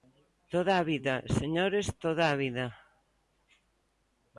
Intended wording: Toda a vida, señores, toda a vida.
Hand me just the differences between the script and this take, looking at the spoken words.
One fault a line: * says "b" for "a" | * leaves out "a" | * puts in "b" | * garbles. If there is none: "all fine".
all fine